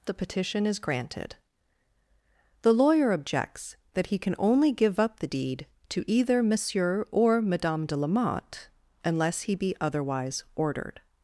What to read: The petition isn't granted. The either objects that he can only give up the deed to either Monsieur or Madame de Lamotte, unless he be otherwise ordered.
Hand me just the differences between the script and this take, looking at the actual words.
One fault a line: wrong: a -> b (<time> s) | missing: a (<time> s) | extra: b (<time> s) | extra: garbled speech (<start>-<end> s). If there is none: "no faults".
wrong: isn't -> is (0.7 s)
wrong: either -> lawyer (2.7 s)